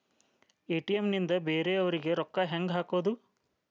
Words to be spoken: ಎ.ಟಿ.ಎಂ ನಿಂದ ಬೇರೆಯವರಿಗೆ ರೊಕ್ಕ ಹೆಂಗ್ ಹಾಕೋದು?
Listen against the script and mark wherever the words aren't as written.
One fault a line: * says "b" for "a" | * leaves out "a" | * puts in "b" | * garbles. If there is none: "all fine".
all fine